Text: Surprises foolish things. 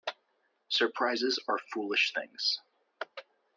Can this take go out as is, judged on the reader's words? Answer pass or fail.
fail